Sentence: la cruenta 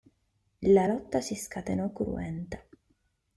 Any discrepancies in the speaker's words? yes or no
yes